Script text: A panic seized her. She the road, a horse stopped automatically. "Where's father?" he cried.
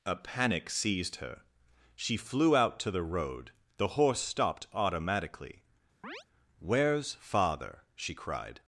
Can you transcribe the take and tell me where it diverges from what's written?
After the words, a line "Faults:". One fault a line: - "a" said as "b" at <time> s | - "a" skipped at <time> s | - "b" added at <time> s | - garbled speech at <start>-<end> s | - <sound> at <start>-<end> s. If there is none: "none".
A panic seized her. She flew out to the road, the horse stopped automatically. "Where's father?" she cried.
Faults:
- "flew out to" added at 2.2 s
- "a" said as "the" at 3.8 s
- chirp at 6.0-6.2 s
- "he" said as "she" at 8.0 s